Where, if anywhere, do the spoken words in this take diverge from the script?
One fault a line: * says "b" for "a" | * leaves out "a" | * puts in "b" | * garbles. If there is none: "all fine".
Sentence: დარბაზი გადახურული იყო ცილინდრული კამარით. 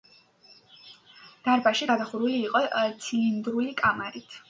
all fine